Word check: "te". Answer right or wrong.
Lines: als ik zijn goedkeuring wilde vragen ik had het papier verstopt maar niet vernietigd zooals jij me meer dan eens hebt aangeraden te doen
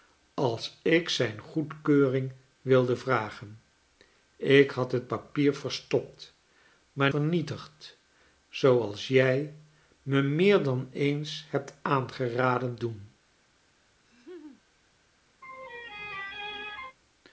wrong